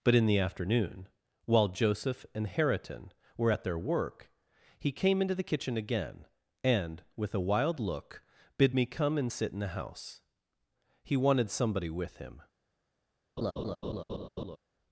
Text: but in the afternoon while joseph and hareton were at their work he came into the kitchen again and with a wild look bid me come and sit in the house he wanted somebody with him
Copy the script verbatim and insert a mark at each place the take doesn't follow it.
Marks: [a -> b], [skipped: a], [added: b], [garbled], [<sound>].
but in the afternoon while joseph and hareton were at their work he came into the kitchen again and with a wild look bid me come and sit in the house he wanted somebody with him [laugh]